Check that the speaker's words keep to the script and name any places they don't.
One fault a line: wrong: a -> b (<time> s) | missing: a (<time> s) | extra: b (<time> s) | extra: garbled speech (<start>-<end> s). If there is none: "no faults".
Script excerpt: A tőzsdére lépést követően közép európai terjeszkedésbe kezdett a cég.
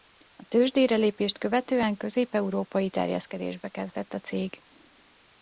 no faults